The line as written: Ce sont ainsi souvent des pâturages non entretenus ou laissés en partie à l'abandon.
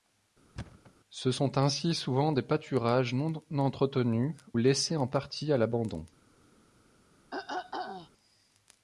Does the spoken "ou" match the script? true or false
false